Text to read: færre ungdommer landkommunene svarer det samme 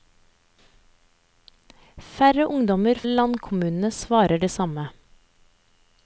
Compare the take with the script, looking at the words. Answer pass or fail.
pass